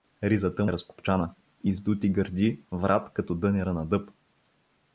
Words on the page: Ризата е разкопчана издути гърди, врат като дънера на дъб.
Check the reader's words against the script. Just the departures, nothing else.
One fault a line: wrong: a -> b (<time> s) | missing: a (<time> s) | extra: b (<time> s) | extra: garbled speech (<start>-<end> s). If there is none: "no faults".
no faults